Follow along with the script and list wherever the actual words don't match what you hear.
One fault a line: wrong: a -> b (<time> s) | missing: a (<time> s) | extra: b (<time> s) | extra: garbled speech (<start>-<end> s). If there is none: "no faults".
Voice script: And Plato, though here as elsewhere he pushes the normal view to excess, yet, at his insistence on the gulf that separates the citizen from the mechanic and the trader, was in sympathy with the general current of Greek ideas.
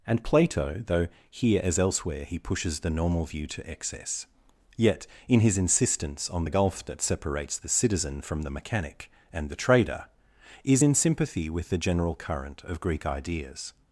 wrong: at -> in (5.3 s)
wrong: was -> is (10.6 s)